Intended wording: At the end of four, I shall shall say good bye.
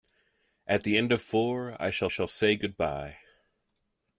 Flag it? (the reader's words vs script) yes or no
no